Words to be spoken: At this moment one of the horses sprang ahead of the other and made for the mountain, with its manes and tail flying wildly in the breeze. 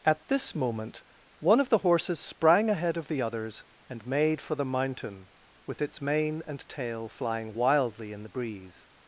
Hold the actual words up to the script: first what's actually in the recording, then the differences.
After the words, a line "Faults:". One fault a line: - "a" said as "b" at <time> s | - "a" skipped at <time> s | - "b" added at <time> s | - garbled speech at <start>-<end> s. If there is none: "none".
At this moment one of the horses sprang ahead of the others and made for the mountain, with its mane and tail flying wildly in the breeze.
Faults:
- "other" said as "others" at 3.2 s
- "manes" said as "mane" at 6.0 s